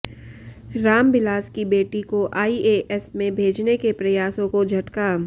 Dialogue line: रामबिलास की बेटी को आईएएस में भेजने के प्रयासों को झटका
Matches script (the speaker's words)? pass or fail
pass